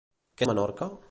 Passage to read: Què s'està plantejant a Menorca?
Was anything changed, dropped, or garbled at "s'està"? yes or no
yes